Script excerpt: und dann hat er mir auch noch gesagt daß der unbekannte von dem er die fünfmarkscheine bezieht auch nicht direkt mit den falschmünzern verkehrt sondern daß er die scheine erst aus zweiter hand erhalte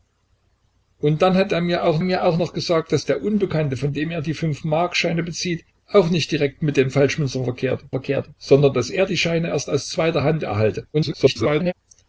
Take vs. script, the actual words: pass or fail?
fail